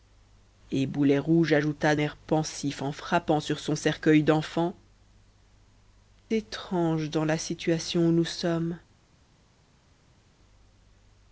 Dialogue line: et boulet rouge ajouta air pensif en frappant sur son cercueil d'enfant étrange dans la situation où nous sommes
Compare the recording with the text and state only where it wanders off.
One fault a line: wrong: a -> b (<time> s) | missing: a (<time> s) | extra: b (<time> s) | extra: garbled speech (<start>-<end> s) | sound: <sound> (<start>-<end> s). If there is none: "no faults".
no faults